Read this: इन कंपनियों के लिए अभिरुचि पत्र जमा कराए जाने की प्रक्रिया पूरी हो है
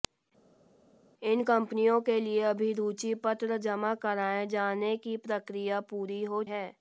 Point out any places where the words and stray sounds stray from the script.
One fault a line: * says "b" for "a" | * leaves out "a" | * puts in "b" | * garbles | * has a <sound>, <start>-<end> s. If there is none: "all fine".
all fine